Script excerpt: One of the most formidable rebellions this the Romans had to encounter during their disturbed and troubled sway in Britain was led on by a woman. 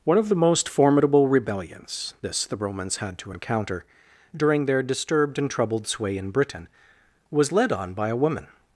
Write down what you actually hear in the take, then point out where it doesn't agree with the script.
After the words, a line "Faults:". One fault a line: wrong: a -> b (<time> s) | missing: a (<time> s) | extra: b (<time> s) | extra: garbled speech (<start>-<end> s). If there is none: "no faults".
One of the most formidable rebellions this the Romans had to encounter during their disturbed and troubled sway in Britain was led on by a woman.
Faults:
no faults